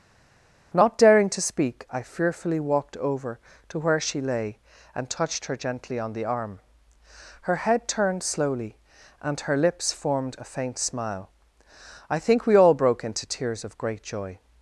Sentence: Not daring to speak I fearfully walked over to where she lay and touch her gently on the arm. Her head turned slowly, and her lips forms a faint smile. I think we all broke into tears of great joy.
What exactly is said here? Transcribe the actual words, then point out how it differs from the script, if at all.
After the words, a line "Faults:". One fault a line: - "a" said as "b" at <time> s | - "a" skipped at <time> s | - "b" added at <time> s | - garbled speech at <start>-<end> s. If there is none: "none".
Not daring to speak I fearfully walked over to where she lay and touched her gently on the arm. Her head turned slowly, and her lips formed a faint smile. I think we all broke into tears of great joy.
Faults:
- "touch" said as "touched" at 5.1 s
- "forms" said as "formed" at 9.9 s